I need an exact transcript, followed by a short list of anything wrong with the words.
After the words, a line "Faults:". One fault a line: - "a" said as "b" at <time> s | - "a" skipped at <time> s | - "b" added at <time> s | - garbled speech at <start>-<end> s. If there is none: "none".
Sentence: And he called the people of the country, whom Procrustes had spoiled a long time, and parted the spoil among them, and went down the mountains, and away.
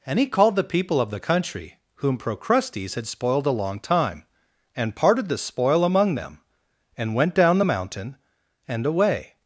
And he called the people of the country, whom Procrustes had spoiled a long time, and parted the spoil among them, and went down the mountain, and away.
Faults:
- "mountains" said as "mountain" at 7.6 s